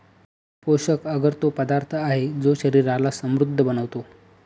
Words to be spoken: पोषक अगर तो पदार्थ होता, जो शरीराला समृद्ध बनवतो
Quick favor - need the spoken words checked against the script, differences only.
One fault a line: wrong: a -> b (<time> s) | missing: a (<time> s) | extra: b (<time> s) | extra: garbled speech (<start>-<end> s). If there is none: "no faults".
wrong: होता -> आहे (1.9 s)